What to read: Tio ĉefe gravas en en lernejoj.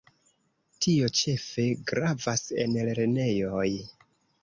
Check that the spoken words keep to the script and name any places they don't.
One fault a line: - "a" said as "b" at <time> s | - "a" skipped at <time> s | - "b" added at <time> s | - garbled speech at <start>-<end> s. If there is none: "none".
- "en" skipped at 2.8 s